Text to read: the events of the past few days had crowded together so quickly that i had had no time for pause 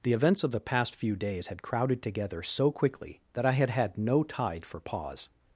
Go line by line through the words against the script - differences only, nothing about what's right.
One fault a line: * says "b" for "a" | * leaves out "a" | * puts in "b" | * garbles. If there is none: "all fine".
* says "tide" for "time"